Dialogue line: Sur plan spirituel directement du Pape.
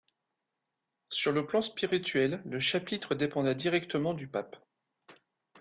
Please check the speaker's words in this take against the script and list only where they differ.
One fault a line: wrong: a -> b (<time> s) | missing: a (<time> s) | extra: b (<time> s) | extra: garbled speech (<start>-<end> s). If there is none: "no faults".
extra: le (1.3 s)
extra: le chapitre dépendait (2.4 s)